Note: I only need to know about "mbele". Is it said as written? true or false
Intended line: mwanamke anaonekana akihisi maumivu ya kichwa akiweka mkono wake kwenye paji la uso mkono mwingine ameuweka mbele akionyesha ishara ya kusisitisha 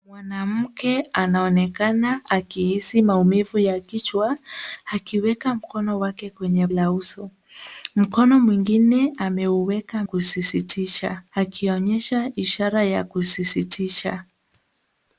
false